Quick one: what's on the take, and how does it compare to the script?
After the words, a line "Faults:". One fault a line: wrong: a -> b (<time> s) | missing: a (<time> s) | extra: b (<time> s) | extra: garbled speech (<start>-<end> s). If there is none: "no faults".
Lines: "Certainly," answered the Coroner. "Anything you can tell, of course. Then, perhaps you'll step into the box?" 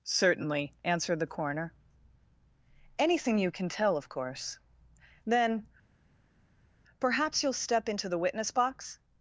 "Certainly," answered the Coroner. "Anything you can tell, of course. Then, perhaps you'll step into the witness box?"
Faults:
extra: witness (8.2 s)